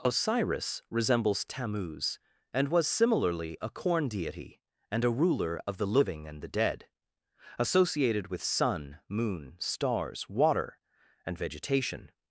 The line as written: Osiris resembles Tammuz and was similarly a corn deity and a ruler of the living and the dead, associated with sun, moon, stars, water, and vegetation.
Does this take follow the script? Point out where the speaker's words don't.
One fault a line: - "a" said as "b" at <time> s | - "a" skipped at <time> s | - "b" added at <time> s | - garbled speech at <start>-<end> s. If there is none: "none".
none